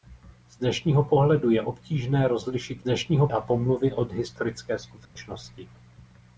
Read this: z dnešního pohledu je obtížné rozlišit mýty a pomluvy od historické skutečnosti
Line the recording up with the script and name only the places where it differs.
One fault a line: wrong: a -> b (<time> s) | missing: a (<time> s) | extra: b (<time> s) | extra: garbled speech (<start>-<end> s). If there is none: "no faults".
wrong: mýty -> dnešního (2.8 s)